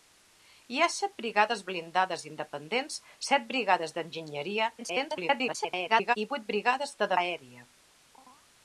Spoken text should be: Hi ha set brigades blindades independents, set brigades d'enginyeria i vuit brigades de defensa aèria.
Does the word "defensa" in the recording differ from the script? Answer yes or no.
yes